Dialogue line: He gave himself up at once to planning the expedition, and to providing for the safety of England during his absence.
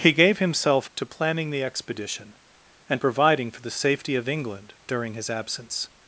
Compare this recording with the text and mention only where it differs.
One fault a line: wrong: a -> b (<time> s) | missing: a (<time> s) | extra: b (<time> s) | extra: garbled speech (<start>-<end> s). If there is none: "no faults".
missing: up at once (0.9 s)
missing: to (3.0 s)